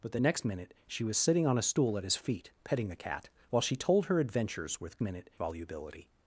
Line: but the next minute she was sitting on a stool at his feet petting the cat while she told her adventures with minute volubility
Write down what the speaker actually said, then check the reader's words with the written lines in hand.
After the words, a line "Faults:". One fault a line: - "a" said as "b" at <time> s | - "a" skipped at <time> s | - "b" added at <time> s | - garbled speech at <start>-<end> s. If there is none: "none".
but the next minute she was sitting on a stool at his feet petting the cat while she told her adventures with minute volubility
Faults:
none